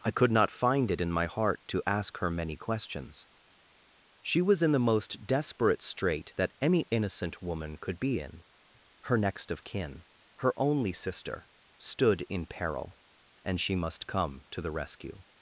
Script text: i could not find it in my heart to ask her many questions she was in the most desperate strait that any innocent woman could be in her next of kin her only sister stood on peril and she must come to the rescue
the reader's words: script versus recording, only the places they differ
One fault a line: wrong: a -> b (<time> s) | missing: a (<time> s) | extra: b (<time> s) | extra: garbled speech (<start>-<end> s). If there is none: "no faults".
wrong: on -> in (12.3 s)